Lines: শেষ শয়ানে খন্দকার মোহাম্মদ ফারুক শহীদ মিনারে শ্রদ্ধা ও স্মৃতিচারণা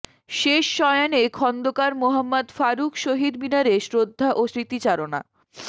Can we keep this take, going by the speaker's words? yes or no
yes